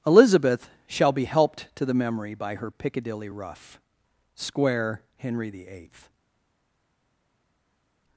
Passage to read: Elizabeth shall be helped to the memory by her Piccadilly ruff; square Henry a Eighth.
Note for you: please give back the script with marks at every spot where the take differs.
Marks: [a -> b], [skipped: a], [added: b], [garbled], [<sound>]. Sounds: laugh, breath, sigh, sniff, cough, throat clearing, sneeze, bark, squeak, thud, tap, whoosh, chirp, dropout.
Elizabeth shall be helped to the memory by her Piccadilly ruff; square Henry [a -> the] Eighth.